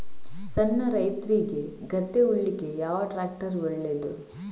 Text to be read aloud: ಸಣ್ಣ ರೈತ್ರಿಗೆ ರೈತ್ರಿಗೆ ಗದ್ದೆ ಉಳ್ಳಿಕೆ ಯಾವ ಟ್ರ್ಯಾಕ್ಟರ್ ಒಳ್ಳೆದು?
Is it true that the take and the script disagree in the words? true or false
true